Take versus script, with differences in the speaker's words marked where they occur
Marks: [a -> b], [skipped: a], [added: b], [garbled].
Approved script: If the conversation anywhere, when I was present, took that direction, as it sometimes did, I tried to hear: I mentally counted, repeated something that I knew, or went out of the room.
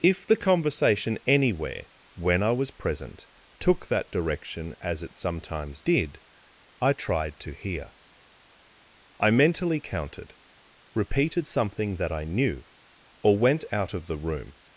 If the conversation anywhere, when I was present, took that direction, as it sometimes did, I tried to hear: I mentally counted, repeated something that I knew, or went out of the room.